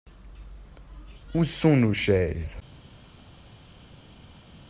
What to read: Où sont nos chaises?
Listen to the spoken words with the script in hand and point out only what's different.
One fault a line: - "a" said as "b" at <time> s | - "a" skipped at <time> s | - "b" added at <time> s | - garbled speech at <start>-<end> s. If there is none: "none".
none